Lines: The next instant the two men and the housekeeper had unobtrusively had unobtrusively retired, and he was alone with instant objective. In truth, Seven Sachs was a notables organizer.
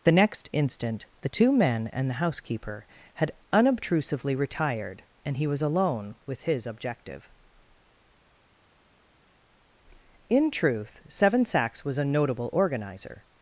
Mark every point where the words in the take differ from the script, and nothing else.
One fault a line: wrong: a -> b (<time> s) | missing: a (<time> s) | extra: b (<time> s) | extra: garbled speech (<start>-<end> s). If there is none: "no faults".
missing: had unobtrusively (4.3 s)
wrong: instant -> his (6.4 s)
wrong: notables -> notable (12.1 s)